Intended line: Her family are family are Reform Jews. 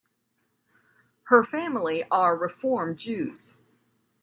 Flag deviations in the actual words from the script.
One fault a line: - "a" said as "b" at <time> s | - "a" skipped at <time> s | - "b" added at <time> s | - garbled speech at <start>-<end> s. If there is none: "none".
- "family are" skipped at 2.4 s